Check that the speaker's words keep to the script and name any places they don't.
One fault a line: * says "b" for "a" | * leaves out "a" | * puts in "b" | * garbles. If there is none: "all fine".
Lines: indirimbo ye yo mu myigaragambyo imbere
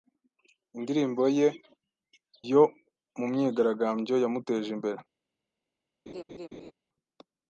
* puts in "yamuteje"